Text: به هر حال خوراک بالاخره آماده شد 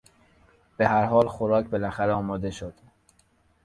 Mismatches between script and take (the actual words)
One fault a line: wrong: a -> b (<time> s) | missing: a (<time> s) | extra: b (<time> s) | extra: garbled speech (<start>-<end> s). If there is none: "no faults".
no faults